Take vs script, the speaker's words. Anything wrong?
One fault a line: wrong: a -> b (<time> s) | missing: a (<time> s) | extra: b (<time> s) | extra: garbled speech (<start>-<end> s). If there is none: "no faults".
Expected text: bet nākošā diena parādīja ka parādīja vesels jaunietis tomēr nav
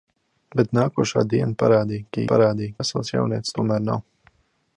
no faults